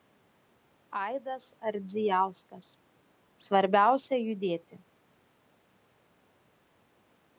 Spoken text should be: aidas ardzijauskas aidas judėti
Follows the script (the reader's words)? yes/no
no